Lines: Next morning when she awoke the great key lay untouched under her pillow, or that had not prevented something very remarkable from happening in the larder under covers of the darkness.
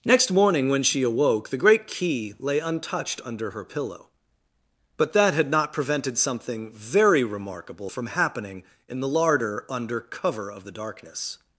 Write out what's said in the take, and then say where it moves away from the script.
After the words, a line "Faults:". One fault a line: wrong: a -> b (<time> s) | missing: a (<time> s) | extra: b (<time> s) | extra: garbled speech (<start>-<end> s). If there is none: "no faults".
Next morning when she awoke the great key lay untouched under her pillow, but that had not prevented something very remarkable from happening in the larder under cover of the darkness.
Faults:
wrong: or -> but (5.0 s)
wrong: covers -> cover (10.0 s)